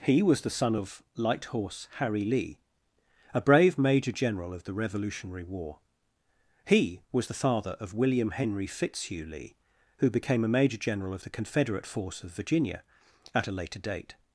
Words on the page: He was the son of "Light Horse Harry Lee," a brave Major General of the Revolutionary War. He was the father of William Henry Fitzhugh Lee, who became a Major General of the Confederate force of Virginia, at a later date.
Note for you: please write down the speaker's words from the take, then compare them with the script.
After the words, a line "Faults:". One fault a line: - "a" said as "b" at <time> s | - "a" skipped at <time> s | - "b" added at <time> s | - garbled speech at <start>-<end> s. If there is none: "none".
He was the son of "Light Horse Harry Lee," a brave Major General of the Revolutionary War. He was the father of William Henry Fitzhugh Lee, who became a Major General of the Confederate force of Virginia, at a later date.
Faults:
none